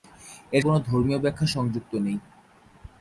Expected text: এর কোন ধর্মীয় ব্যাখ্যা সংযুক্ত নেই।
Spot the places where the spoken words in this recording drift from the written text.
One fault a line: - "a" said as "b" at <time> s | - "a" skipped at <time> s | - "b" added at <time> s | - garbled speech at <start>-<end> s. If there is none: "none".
none